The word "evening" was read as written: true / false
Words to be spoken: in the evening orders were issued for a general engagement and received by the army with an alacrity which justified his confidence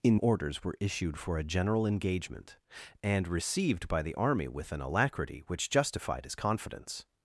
false